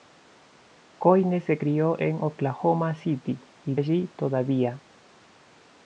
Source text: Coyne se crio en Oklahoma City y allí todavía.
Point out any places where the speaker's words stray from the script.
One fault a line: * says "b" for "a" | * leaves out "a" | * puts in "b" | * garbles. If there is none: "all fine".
all fine